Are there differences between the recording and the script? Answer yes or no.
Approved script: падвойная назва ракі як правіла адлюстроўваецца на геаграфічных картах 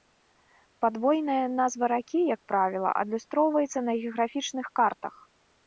no